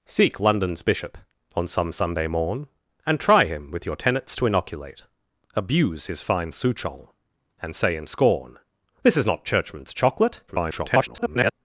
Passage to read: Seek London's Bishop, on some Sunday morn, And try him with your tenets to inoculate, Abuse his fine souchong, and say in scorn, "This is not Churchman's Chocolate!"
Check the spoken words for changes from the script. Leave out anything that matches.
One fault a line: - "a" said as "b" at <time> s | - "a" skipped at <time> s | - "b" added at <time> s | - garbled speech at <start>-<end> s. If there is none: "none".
- garbled speech at 10.5-11.5 s